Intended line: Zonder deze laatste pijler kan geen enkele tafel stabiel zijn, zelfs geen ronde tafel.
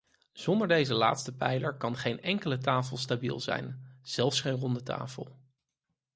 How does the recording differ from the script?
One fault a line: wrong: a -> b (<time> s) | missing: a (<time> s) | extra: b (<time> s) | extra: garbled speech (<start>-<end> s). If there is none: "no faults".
no faults